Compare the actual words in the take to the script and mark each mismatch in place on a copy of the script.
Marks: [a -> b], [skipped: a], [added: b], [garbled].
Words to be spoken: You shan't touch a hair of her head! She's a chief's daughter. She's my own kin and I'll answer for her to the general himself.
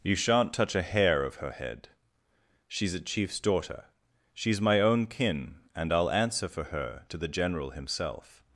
You shan't touch a hair of her head! She's a chief's daughter. She's my own kin and I'll answer for her to the general himself.